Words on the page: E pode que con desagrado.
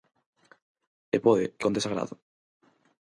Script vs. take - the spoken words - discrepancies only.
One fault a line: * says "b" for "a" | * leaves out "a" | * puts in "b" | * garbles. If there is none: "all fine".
all fine